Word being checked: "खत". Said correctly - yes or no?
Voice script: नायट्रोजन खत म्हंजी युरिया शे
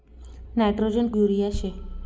no